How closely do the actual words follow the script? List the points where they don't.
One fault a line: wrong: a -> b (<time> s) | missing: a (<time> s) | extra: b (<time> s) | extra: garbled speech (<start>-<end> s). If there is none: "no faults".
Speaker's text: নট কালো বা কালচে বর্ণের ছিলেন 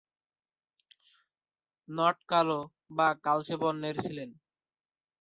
no faults